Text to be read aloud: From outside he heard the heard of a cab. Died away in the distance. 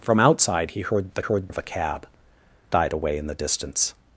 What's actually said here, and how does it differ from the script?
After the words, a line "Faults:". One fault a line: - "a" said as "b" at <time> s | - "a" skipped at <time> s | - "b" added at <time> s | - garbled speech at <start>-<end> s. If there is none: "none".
From outside he heard the heard of a cab. Died away in the distance.
Faults:
none